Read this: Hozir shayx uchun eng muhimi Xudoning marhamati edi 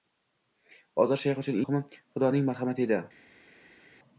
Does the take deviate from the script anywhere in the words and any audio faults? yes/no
yes